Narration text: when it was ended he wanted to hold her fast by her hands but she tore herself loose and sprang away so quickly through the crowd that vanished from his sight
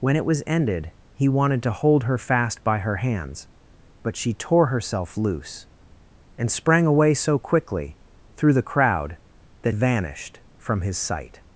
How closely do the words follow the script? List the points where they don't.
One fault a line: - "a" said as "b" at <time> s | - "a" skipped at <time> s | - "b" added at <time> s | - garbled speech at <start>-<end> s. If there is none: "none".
none